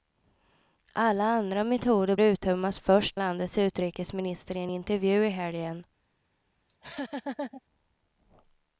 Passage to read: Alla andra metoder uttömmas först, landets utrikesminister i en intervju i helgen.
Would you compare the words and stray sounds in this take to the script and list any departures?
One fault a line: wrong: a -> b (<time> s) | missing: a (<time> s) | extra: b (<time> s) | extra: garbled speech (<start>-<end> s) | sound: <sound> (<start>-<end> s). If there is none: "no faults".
sound: laugh (6.7-7.6 s)